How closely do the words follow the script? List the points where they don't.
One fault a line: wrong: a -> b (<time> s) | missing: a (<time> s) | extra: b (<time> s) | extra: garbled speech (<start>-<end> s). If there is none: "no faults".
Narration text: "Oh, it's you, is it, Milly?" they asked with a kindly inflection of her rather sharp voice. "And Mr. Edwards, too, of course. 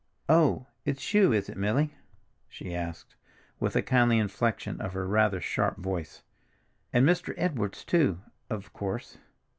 wrong: they -> she (2.5 s)